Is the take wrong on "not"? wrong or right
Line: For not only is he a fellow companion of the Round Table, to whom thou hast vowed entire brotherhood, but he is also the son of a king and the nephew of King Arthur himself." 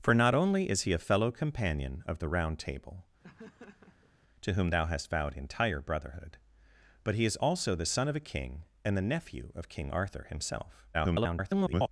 right